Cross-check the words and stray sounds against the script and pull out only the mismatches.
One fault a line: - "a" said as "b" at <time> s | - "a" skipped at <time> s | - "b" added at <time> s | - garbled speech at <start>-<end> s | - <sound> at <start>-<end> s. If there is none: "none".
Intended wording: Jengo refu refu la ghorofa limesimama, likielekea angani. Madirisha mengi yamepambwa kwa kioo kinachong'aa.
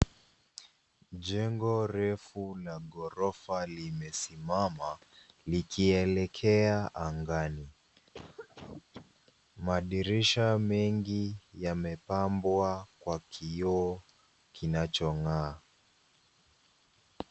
- "refu" skipped at 2.5 s
- cough at 8.1-9.1 s